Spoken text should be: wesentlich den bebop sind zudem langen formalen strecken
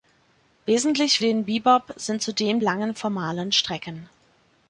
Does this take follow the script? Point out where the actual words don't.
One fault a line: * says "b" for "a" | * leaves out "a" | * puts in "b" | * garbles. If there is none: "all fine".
all fine